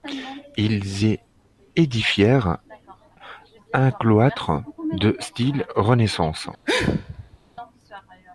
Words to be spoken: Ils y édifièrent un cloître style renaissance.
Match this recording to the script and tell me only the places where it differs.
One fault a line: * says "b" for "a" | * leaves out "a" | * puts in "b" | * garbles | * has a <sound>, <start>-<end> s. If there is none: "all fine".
* puts in "de"
* has a sneeze, 6.6-7.4 s